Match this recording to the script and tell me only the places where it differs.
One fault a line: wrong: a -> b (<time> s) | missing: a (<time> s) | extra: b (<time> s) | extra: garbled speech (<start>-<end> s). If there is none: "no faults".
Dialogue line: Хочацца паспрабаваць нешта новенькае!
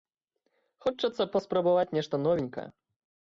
no faults